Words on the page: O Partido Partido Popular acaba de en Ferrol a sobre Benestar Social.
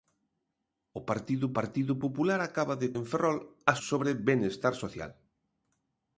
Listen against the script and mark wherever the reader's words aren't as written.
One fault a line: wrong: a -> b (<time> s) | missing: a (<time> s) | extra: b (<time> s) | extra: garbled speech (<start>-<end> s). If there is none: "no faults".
no faults